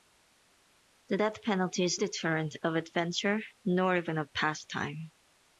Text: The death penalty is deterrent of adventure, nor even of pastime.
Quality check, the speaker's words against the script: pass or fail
pass